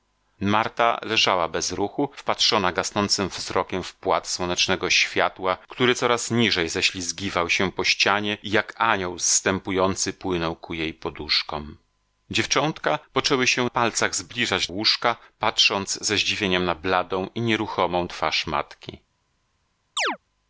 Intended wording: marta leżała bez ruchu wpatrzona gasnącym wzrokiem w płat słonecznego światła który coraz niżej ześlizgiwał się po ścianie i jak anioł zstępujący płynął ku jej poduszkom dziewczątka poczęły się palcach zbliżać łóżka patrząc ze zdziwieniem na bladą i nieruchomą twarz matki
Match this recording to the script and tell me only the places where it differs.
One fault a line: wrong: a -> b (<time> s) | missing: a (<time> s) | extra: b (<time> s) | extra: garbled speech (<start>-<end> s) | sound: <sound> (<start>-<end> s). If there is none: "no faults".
sound: chirp (20.0-20.2 s)